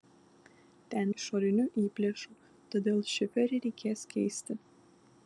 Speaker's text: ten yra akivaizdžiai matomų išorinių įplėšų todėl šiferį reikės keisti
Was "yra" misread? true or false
true